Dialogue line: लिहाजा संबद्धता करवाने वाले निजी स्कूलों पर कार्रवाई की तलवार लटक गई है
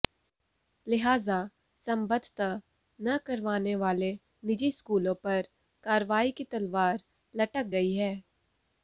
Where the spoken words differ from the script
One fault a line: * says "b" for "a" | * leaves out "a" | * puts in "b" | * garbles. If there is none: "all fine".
* puts in "न"